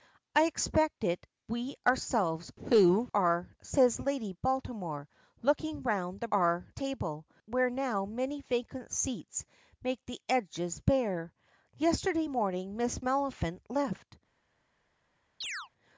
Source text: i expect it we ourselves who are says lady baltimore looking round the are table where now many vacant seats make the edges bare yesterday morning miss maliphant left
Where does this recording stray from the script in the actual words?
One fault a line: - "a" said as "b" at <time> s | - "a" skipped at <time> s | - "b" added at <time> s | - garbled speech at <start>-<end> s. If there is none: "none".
none